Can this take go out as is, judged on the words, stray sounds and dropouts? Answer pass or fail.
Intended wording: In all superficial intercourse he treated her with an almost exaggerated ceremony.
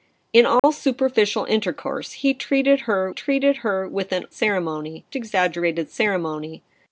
fail